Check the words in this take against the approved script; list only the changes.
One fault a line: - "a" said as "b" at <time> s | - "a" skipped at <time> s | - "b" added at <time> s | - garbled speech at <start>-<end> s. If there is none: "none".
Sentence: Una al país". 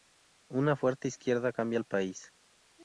- "fuerte izquierda cambia" added at 0.8 s